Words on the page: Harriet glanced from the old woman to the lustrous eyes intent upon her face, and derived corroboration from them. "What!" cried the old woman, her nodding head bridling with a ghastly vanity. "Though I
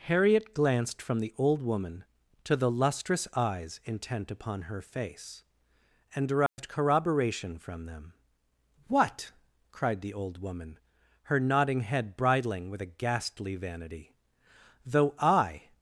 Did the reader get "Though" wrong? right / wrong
right